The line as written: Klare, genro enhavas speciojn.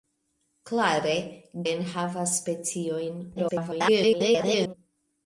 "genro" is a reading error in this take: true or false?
true